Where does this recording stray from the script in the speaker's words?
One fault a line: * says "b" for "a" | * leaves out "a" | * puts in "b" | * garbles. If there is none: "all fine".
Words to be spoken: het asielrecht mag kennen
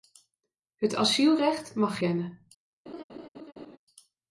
all fine